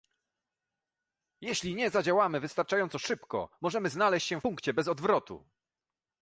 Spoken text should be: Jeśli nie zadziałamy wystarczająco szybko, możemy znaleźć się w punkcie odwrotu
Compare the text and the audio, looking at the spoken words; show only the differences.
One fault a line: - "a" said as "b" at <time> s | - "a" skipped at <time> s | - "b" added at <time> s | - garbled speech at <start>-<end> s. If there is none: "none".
- "bez" added at 4.7 s